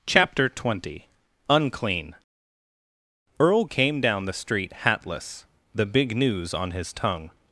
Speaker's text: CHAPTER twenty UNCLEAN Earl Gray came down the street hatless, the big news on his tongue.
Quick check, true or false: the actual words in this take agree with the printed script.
false